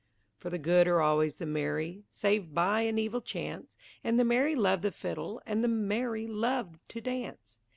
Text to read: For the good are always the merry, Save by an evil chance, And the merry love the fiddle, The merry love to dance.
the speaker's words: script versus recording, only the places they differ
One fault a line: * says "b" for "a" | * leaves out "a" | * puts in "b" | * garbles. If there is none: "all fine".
* puts in "And"